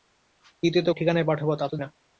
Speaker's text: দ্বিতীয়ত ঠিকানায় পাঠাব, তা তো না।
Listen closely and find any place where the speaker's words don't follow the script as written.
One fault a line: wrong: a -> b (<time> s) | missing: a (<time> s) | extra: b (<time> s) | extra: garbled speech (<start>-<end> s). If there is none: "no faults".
no faults